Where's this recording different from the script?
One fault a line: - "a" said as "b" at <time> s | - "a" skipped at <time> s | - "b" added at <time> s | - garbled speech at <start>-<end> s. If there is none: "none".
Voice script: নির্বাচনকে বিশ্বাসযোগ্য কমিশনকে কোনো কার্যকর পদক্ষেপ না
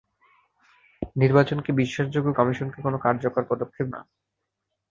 none